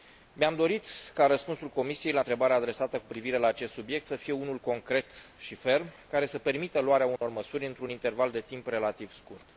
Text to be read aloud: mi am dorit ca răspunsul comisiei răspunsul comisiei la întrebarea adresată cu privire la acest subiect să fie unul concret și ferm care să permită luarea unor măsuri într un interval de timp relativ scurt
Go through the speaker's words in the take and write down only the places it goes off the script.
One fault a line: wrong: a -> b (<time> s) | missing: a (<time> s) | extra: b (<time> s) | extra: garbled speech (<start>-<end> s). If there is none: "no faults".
missing: răspunsul comisiei (2.1 s)